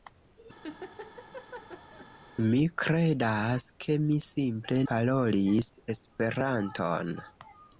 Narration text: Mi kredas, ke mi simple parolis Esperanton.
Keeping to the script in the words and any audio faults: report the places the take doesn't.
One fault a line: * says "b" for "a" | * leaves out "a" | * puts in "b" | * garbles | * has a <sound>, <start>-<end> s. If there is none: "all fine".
* has a laugh, 0.6-2.1 s